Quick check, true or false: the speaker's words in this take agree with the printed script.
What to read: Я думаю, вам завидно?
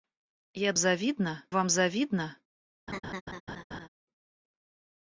false